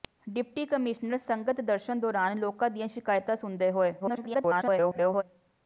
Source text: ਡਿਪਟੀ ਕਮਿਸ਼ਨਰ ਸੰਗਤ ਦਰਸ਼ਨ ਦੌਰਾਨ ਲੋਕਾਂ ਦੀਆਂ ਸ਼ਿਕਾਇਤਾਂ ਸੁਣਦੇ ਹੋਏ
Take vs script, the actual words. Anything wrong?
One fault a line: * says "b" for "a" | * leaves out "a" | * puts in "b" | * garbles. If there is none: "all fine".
* garbles